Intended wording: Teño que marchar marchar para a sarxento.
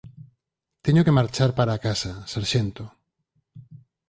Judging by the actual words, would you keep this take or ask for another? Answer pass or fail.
fail